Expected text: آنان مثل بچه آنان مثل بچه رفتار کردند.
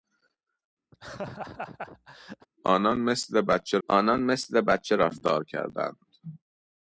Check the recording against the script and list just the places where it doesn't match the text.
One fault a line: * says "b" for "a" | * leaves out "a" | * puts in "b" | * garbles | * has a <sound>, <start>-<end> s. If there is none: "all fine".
* has a laugh, 0.9-2.5 s